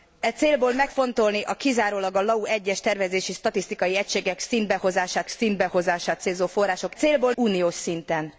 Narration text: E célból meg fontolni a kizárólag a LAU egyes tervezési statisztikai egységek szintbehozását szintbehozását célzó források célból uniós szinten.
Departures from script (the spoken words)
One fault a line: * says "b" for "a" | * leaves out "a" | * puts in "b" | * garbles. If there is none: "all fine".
all fine